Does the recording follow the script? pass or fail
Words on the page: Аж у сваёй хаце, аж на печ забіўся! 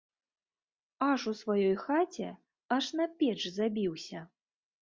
pass